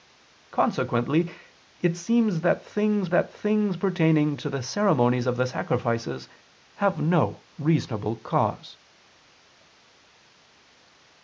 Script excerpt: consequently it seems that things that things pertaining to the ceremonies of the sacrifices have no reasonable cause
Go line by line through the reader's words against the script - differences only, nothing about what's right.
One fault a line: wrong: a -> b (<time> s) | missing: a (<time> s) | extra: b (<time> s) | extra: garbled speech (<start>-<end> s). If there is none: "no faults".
no faults